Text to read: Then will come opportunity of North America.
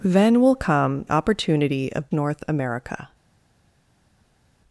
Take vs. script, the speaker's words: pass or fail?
pass